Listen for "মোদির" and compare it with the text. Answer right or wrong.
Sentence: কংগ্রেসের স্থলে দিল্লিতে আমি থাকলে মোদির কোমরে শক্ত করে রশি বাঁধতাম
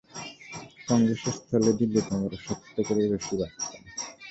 wrong